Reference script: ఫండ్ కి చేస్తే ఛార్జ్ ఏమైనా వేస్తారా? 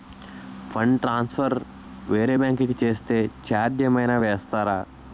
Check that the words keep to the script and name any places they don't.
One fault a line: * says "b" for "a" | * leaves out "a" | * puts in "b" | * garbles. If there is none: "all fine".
* puts in "ట్రాన్సఫర్ వేరే బ్యాంకు"